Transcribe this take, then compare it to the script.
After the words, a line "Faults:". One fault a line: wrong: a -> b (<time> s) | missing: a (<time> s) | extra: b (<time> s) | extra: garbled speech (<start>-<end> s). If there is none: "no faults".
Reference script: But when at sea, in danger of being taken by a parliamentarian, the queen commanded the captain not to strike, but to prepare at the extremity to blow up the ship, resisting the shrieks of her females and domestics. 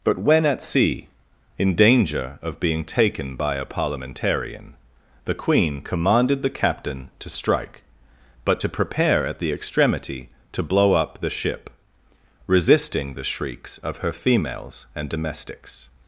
But when at sea, in danger of being taken by a parliamentarian, the queen commanded the captain to strike, but to prepare at the extremity to blow up the ship, resisting the shrieks of her females and domestics.
Faults:
missing: not (7.1 s)